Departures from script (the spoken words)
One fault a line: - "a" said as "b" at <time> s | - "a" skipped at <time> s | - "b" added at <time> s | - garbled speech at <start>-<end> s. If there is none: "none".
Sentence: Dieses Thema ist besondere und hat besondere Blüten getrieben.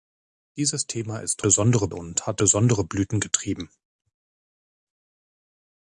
none